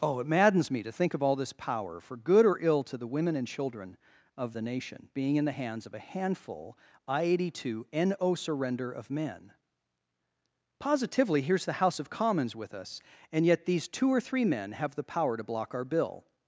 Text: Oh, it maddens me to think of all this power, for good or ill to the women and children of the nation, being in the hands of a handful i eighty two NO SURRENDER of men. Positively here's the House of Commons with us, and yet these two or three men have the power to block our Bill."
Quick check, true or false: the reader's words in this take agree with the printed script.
true